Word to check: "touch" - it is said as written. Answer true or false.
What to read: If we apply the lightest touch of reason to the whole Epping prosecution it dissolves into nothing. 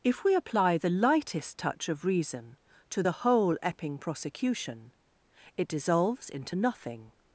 true